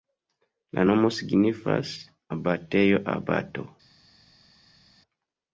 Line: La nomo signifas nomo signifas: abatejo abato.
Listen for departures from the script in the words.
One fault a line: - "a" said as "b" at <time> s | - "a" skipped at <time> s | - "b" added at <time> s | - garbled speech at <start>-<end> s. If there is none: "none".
- "nomo signifas" skipped at 1.9 s